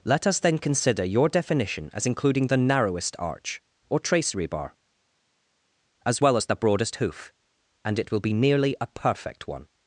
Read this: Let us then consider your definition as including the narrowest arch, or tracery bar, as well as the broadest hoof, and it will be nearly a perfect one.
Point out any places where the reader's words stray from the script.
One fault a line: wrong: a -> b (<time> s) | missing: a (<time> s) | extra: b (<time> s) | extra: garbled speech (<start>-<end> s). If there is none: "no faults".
no faults